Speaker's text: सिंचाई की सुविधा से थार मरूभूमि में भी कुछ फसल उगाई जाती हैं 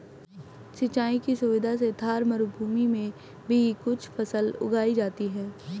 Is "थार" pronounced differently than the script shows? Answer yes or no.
no